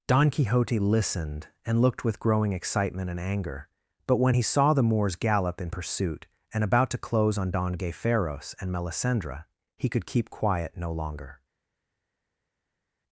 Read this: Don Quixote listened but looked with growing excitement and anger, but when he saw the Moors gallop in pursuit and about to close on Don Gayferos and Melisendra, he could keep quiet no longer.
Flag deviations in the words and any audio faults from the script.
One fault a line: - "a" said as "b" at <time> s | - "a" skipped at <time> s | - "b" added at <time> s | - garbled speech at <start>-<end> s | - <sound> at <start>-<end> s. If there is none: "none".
- "but" said as "and" at 1.6 s